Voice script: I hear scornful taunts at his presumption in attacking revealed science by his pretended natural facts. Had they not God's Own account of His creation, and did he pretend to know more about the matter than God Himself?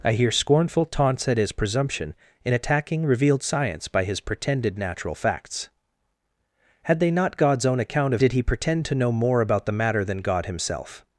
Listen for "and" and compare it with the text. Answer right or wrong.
wrong